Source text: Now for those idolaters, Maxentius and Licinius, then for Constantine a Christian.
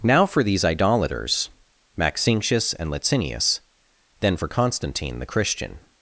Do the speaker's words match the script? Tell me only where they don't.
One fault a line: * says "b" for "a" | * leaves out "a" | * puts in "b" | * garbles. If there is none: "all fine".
* says "these" for "those"
* says "the" for "a"